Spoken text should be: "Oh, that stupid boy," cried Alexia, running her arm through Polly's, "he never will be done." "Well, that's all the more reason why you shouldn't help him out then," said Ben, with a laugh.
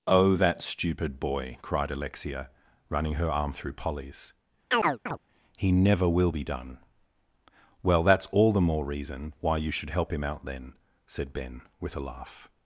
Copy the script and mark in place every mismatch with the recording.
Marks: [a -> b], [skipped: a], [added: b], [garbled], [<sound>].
"Oh, that stupid boy," cried Alexia, running her arm through Polly's, [chirp] "he never will be done." "Well, that's all the more reason why you [shouldn't -> should] help him out then," said Ben, with a laugh.